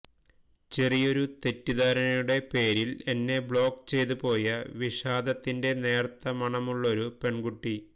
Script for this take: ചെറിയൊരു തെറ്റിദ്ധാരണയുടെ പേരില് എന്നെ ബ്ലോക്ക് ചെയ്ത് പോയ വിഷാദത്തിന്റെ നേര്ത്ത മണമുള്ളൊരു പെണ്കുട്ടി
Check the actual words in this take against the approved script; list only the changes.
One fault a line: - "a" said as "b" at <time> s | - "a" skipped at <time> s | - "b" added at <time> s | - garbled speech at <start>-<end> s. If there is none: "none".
none